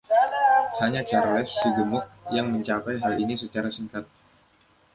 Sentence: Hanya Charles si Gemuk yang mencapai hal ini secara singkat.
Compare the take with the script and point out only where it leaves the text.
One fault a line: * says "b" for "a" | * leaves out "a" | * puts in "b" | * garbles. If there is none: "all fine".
all fine